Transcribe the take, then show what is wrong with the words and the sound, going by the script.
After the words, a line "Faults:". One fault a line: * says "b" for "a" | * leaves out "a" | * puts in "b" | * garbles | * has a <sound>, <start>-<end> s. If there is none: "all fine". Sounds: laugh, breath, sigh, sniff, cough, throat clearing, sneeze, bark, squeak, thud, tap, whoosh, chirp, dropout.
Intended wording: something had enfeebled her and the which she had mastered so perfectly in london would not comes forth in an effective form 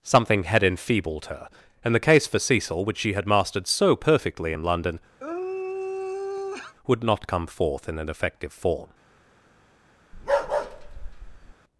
something had enfeebled her and the case for cecil which she had mastered so perfectly in london would not come forth in an effective form
Faults:
* puts in "case for cecil"
* has a sigh, 5.2-6.7 s
* says "come" for "comes"
* has a bark, 10.1-11.5 s